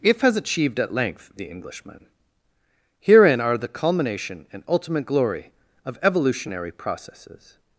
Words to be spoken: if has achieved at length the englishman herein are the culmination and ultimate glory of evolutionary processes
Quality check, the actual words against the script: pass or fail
pass